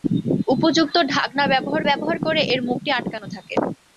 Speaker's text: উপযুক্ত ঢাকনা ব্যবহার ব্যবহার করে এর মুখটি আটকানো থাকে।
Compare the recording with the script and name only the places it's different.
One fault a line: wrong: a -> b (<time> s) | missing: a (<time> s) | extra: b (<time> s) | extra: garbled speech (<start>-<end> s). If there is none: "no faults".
no faults